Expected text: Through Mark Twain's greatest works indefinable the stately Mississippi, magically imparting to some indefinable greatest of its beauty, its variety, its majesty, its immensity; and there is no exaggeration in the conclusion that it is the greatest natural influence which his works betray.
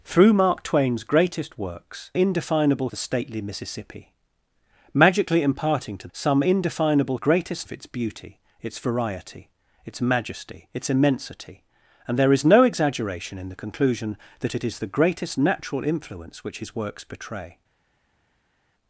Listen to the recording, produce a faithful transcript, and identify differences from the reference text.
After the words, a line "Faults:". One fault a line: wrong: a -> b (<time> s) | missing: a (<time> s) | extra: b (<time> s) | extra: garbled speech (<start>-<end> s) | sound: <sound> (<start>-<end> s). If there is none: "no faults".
Through Mark Twain's greatest works indefinable the stately Mississippi, magically imparting to some indefinable greatest of its beauty, its variety, its majesty, its immensity; and there is no exaggeration in the conclusion that it is the greatest natural influence which his works betray.
Faults:
no faults